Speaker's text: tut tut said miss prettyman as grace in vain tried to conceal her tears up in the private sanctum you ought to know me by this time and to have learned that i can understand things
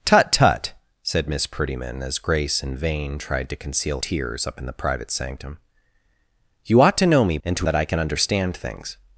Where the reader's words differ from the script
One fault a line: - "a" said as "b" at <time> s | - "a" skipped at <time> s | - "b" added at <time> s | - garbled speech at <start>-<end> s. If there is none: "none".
- "her" skipped at 4.0 s
- "by this time" skipped at 7.4 s
- "have learned" skipped at 7.7 s